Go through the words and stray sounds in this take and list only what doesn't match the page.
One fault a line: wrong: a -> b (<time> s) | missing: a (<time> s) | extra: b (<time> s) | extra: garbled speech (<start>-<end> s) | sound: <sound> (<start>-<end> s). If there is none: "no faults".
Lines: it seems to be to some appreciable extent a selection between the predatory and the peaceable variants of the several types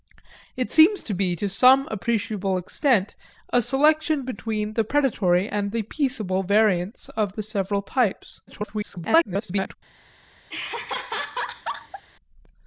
extra: garbled speech (8.5-9.8 s)
sound: laugh (10.5-12.0 s)